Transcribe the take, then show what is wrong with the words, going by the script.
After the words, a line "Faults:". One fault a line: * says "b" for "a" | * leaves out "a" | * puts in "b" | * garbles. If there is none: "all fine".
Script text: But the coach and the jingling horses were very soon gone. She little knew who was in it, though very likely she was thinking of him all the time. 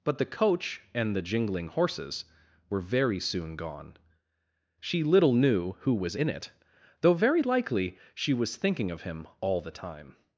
But the coach and the jingling horses were very soon gone. She little knew who was in it, though very likely she was thinking of him all the time.
Faults:
all fine